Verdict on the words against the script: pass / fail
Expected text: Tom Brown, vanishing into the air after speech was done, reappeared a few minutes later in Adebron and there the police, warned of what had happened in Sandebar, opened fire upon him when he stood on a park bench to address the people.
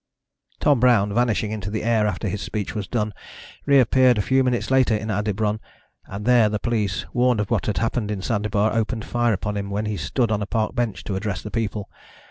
fail